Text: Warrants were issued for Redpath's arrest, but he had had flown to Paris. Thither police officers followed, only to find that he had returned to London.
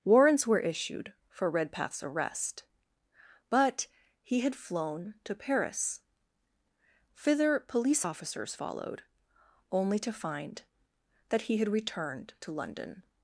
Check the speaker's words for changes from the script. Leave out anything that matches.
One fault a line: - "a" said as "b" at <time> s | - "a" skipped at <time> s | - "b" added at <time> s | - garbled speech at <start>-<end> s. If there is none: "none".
- "had" skipped at 4.5 s